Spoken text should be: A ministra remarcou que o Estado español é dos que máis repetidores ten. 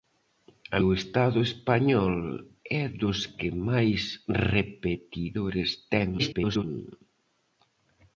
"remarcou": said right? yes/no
no